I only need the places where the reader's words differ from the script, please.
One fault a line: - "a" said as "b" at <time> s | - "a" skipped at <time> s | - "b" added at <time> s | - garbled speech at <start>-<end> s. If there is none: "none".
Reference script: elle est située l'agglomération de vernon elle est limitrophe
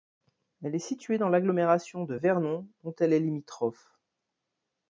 - "dans" added at 1.2 s
- "dont" added at 2.8 s